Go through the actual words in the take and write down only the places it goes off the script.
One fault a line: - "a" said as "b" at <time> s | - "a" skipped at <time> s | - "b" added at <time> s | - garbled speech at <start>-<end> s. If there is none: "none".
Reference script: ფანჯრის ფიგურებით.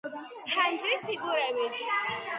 none